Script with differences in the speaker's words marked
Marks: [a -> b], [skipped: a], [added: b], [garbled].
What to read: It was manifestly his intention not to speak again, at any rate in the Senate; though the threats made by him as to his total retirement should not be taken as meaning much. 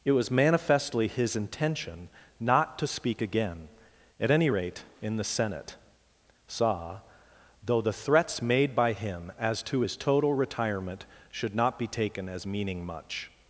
It was manifestly his intention not to speak again, at any rate in the Senate; [added: saw] though the threats made by him as to his total retirement should not be taken as meaning much.